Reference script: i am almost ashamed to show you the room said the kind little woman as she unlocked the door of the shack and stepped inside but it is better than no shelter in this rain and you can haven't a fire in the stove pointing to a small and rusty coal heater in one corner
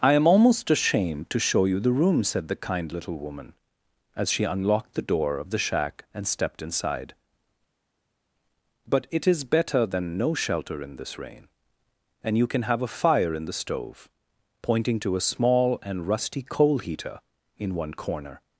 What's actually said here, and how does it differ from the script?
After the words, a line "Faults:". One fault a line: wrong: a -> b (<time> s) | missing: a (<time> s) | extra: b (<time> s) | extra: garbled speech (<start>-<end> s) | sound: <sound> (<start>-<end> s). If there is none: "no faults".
i am almost ashamed to show you the room said the kind little woman as she unlocked the door of the shack and stepped inside but it is better than no shelter in this rain and you can have a fire in the stove pointing to a small and rusty coal heater in one corner
Faults:
wrong: haven't -> have (12.6 s)